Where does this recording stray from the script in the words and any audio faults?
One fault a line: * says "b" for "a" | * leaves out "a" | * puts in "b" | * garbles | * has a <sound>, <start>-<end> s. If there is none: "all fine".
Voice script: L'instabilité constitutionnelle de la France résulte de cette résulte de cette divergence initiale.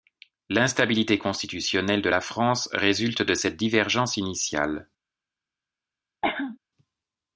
* leaves out "résulte de cette"
* has a cough, 6.2-6.6 s